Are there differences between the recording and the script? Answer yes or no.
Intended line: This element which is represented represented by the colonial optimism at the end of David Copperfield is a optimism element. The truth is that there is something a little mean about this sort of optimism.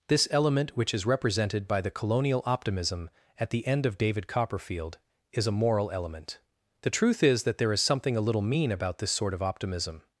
yes